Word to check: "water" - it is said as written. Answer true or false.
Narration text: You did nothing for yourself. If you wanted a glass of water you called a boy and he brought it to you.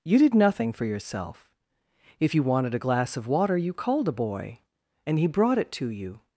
true